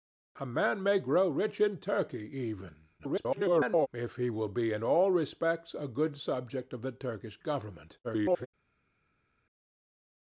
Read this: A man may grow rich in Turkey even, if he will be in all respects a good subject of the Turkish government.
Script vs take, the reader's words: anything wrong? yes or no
yes